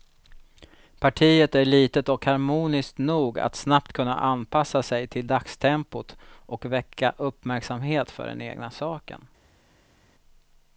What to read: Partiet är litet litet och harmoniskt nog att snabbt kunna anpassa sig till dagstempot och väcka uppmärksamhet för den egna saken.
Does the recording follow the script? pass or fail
fail